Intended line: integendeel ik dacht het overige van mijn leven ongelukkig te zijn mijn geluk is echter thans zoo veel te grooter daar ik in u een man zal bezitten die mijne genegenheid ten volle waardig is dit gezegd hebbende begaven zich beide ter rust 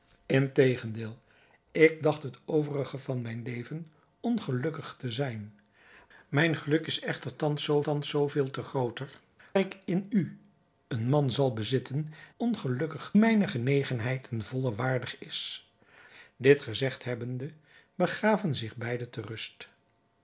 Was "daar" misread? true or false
true